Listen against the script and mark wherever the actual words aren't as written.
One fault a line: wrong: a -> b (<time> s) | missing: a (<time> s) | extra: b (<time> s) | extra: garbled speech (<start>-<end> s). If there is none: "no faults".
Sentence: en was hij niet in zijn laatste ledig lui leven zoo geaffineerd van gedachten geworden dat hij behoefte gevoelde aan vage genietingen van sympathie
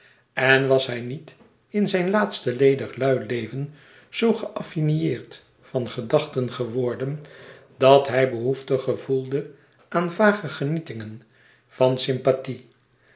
no faults